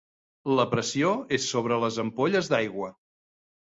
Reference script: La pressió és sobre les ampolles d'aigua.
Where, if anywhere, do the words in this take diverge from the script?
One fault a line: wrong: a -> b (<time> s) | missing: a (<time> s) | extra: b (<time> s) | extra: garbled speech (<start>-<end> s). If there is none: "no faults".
no faults